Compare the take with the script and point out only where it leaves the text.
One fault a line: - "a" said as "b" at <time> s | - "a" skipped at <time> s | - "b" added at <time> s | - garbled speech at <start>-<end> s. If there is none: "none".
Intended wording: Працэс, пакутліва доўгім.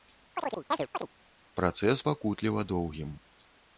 none